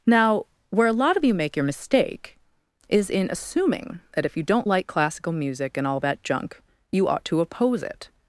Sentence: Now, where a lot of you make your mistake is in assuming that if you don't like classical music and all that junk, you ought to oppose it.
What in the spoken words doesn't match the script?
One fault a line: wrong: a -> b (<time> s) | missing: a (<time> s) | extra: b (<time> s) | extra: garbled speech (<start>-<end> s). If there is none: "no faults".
no faults